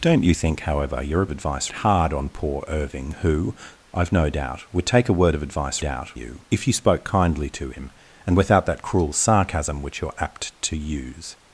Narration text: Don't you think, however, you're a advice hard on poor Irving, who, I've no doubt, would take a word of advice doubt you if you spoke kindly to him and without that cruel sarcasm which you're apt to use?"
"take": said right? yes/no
yes